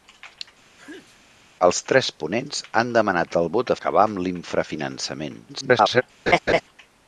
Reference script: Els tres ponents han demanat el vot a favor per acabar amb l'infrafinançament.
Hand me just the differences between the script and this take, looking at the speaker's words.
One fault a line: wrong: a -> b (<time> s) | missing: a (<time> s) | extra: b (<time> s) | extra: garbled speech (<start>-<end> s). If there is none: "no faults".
missing: favor per (3.8 s)
extra: garbled speech (5.5-6.0 s)